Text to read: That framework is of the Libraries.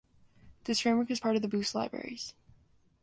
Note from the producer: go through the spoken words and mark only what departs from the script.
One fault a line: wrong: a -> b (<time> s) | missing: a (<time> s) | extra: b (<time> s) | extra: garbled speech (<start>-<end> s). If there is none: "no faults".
wrong: That -> This (0.6 s)
extra: part (1.2 s)
extra: Boost (1.5 s)